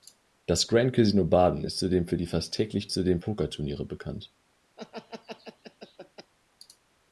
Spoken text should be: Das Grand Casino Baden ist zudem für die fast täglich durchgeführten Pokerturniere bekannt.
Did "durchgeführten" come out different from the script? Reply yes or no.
yes